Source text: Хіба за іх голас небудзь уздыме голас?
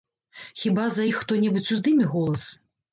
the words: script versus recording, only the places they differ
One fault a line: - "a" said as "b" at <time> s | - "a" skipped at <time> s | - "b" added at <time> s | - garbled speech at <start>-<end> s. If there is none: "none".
- "голас" said as "хто" at 1.2 s